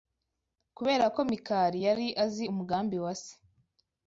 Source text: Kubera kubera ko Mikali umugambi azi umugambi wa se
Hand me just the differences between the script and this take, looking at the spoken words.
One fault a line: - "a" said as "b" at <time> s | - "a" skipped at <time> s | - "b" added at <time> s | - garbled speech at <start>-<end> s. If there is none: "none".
- "kubera" skipped at 1.1 s
- "umugambi" said as "yari" at 1.9 s